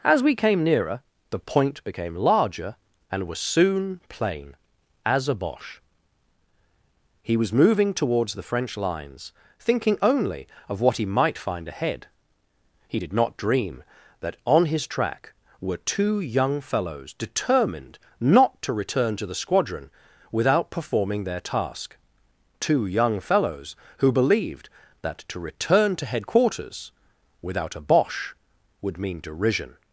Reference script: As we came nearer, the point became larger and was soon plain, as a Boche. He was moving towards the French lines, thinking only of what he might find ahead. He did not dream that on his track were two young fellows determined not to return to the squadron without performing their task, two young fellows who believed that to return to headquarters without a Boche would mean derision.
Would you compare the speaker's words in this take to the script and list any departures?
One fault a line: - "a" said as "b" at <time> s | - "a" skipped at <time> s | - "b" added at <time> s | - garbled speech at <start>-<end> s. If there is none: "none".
none